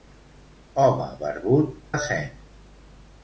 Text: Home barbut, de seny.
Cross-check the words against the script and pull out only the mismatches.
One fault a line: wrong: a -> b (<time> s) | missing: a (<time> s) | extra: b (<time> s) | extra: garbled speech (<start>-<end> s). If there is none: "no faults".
no faults